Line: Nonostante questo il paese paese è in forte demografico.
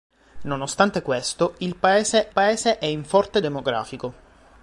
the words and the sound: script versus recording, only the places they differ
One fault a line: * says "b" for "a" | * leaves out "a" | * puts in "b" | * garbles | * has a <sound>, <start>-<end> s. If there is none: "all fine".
all fine